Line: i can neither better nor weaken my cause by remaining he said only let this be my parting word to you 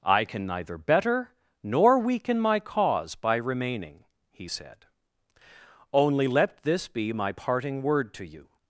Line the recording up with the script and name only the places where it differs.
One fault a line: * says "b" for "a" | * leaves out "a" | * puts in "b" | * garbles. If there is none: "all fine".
all fine